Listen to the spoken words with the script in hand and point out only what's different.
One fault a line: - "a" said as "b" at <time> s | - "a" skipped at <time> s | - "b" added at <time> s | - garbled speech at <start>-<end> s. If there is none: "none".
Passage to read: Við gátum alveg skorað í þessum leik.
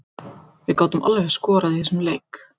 none